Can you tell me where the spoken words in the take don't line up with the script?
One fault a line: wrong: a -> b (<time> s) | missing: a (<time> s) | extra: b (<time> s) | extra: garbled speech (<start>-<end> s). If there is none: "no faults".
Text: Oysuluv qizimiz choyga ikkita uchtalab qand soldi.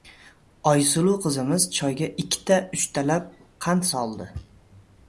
no faults